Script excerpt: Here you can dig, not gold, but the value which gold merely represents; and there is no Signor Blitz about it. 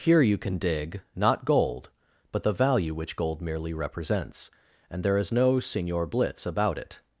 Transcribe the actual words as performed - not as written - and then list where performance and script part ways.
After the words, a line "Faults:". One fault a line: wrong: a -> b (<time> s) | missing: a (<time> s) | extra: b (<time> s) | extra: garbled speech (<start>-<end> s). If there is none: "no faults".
Here you can dig, not gold, but the value which gold merely represents; and there is no Signor Blitz about it.
Faults:
no faults